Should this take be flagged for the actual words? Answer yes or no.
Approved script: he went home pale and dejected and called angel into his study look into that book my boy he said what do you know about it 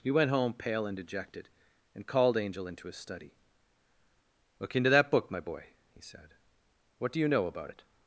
no